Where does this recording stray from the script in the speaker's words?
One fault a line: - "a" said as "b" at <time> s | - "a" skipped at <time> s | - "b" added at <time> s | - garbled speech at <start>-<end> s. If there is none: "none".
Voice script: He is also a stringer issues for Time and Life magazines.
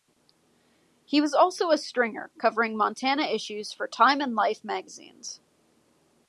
- "is" said as "was" at 1.2 s
- "covering Montana" added at 2.4 s